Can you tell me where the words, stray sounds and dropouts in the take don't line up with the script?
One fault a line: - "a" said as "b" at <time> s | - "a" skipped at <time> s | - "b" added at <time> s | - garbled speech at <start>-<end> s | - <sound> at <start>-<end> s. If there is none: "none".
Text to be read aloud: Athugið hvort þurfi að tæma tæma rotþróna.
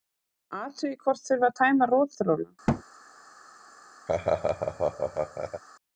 - "tæma" skipped at 1.9 s
- thud at 2.7-2.8 s
- laugh at 4.1-5.6 s